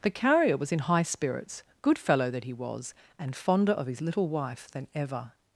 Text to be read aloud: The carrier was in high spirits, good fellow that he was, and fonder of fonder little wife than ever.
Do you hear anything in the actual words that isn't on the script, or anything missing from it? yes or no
yes